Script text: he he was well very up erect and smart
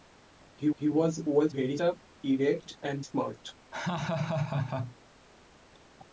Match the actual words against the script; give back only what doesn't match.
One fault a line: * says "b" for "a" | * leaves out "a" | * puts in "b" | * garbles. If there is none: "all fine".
all fine